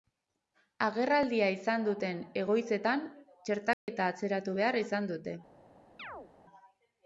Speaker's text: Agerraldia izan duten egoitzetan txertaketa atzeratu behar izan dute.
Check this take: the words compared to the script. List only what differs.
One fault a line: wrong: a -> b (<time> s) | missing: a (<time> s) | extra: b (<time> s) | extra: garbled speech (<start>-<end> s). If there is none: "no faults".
no faults